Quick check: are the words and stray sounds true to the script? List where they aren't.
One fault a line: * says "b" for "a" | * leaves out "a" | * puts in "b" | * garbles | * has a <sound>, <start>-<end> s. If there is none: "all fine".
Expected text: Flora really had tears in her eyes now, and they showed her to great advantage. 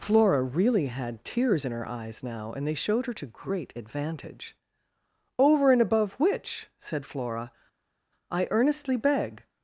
* puts in "Over and above which said Flora I earnestly beg"